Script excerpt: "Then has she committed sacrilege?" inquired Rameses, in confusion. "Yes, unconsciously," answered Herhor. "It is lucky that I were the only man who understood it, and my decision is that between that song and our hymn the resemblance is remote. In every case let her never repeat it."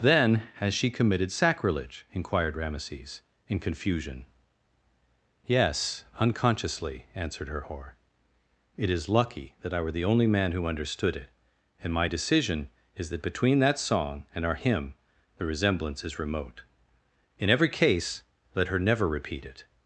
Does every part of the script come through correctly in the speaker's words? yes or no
yes